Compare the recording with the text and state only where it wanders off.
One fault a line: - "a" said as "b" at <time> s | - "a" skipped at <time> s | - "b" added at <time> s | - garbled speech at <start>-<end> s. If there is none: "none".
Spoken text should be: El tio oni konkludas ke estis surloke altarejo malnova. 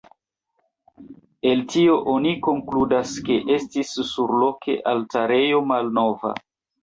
none